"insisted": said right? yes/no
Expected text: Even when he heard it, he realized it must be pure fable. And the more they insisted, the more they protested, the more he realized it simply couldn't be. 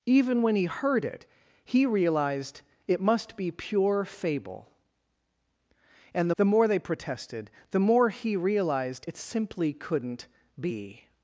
no